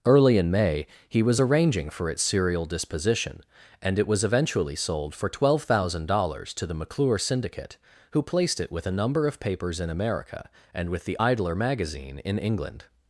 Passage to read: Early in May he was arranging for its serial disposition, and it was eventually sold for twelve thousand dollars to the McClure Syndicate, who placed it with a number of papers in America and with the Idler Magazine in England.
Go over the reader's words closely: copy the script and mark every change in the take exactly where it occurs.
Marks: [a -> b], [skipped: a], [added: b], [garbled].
Early in May he was arranging for its serial disposition, and it was eventually sold for twelve thousand dollars to the McClure Syndicate, who placed it with a number of papers in America and with the Idler Magazine in England.